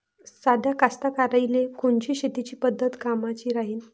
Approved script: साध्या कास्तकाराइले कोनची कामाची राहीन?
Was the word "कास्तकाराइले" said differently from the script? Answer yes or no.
no